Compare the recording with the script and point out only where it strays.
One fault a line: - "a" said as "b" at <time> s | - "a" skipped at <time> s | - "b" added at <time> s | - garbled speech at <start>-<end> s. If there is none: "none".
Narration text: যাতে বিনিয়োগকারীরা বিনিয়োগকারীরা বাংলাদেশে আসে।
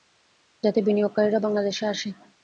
- "বিনিয়োগকারীরা" skipped at 1.4 s